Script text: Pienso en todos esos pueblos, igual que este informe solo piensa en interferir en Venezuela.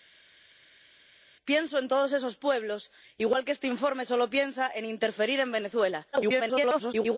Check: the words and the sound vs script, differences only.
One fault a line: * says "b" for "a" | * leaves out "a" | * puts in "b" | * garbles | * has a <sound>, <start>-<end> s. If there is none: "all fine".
* garbles